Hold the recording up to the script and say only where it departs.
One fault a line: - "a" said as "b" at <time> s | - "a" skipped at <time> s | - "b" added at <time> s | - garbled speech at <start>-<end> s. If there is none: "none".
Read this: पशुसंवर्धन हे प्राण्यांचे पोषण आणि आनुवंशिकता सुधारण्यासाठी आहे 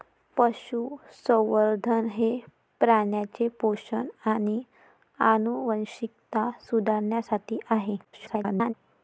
- garbled speech at 8.0-8.7 s